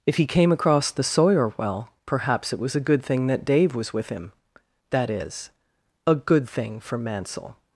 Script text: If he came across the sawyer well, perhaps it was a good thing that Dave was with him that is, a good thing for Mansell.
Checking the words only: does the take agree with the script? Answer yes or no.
yes